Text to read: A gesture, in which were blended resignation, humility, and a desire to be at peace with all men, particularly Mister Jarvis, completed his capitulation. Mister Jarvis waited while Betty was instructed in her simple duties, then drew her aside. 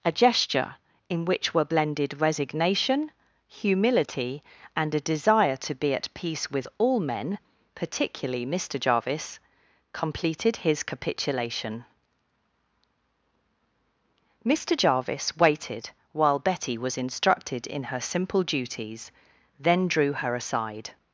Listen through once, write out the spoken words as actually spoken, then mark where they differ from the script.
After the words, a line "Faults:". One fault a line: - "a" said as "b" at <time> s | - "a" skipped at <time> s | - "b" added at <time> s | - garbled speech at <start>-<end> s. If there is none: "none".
A gesture, in which were blended resignation, humility, and a desire to be at peace with all men, particularly Mister Jarvis, completed his capitulation. Mister Jarvis waited while Betty was instructed in her simple duties, then drew her aside.
Faults:
none